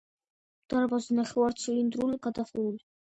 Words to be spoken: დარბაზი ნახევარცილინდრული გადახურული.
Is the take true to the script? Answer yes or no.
yes